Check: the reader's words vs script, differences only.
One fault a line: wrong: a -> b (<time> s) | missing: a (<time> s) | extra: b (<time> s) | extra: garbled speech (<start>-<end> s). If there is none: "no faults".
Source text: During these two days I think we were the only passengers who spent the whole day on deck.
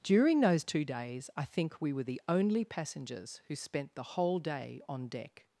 wrong: these -> those (0.4 s)